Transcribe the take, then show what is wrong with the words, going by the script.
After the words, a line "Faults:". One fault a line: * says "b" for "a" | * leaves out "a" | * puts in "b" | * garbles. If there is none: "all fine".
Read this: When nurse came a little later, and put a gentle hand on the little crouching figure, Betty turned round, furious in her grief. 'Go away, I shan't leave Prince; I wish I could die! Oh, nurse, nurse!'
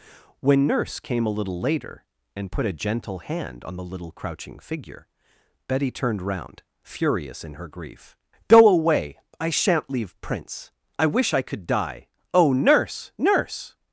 When nurse came a little later, and put a gentle hand on the little crouching figure, Betty turned round, furious in her grief. 'Go away, I shan't leave Prince; I wish I could die! Oh, nurse, nurse!'
Faults:
all fine